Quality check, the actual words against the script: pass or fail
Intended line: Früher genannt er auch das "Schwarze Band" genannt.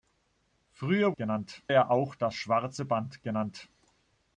pass